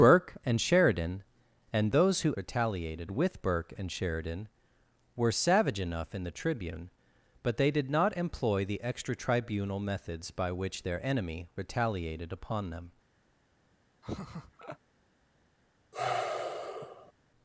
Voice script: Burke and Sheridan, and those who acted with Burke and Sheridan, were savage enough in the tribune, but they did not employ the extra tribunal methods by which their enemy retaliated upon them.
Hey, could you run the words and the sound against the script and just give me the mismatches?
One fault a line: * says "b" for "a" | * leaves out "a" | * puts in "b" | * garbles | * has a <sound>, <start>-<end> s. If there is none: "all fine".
* says "retaliated" for "acted"
* has a laugh, 14.0-14.8 s
* has a sigh, 15.9-17.1 s